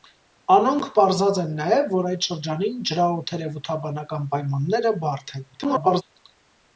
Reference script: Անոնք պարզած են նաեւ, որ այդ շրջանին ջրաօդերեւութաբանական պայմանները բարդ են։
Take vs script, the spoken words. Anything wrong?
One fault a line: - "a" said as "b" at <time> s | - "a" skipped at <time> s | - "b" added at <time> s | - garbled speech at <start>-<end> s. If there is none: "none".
- garbled speech at 5.5-6.0 s